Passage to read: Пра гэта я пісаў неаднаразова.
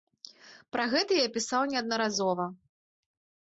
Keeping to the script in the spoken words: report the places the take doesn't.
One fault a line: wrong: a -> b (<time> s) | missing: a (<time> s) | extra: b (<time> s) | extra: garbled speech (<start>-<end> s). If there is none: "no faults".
no faults